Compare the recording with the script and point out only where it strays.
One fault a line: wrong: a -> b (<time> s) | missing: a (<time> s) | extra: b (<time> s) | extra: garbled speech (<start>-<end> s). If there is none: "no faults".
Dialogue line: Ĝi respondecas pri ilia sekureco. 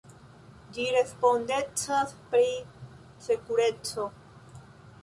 missing: ilia (2.5 s)